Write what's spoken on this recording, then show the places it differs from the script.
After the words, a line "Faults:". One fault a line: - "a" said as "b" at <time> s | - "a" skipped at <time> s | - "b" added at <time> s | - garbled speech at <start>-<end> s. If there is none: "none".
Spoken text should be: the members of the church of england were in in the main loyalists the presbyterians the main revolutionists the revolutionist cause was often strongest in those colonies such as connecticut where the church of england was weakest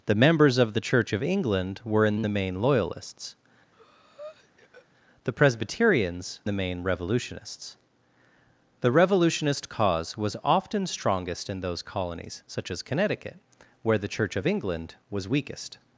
the members of the church of england were in in the main loyalists the presbyterians the main revolutionists the revolutionist cause was often strongest in those colonies such as connecticut where the church of england was weakest
Faults:
none